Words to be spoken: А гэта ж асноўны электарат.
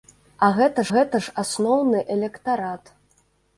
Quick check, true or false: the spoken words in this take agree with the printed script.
false